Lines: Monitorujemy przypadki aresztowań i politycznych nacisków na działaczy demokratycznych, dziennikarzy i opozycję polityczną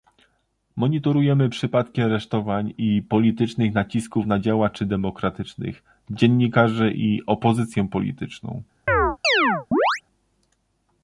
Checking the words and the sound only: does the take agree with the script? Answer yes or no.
no